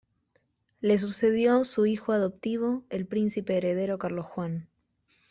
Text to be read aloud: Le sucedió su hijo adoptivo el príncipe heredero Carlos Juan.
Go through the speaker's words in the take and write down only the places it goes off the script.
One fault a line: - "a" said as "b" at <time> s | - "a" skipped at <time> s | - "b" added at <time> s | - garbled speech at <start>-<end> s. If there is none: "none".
none